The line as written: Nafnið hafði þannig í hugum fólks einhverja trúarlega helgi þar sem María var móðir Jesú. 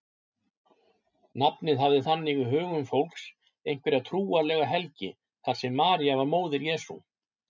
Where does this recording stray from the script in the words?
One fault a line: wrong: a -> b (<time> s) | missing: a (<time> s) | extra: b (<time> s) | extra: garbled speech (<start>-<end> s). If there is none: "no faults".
no faults